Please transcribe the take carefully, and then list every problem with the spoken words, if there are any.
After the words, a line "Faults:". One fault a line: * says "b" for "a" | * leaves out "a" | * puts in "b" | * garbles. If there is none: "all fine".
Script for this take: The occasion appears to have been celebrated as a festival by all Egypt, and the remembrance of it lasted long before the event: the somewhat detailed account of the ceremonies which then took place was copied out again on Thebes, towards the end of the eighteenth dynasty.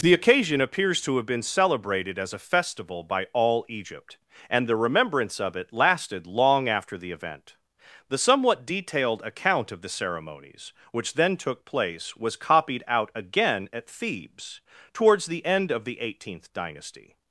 The occasion appears to have been celebrated as a festival by all Egypt, and the remembrance of it lasted long after the event: the somewhat detailed account of the ceremonies which then took place was copied out again at Thebes, towards the end of the eighteenth dynasty.
Faults:
* says "after" for "before"
* says "at" for "on"